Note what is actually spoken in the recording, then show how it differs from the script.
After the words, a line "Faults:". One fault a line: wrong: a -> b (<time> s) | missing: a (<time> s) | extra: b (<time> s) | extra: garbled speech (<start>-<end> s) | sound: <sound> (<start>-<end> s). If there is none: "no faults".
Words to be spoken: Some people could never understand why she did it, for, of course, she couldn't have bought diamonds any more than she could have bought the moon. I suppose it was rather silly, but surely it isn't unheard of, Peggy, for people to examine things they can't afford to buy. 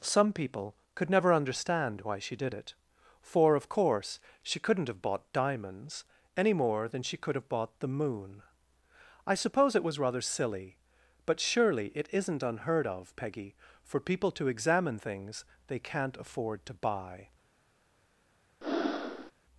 Some people could never understand why she did it, for, of course, she couldn't have bought diamonds any more than she could have bought the moon. I suppose it was rather silly, but surely it isn't unheard of, Peggy, for people to examine things they can't afford to buy.
Faults:
sound: breath (18.6-19.3 s)